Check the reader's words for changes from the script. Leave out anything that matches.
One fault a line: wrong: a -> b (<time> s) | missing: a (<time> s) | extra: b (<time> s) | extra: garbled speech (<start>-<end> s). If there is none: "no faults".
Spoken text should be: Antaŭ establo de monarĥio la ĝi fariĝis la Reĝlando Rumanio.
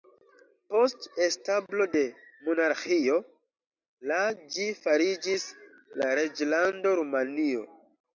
wrong: Antaŭ -> Post (0.7 s)